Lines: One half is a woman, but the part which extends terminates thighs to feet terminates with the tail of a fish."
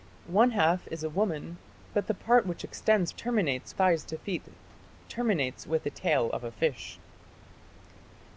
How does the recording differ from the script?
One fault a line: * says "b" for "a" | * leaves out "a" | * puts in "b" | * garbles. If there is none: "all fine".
all fine